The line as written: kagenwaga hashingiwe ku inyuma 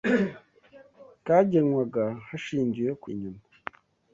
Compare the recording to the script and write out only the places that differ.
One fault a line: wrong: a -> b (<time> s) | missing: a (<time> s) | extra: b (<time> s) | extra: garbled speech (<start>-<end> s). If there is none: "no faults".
no faults